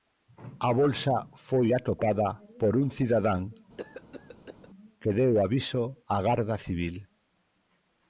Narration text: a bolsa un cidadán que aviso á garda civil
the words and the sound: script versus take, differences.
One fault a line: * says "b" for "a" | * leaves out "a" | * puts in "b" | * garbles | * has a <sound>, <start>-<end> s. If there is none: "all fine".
* puts in "foi atopada por"
* has a cough, 3.8-4.7 s
* puts in "deu"